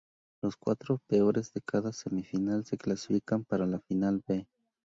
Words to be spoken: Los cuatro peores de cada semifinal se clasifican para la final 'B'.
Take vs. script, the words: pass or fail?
pass